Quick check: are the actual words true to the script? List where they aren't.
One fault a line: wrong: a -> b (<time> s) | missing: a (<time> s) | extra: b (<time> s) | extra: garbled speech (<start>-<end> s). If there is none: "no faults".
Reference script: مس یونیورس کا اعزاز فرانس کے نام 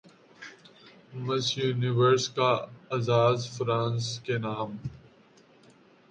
no faults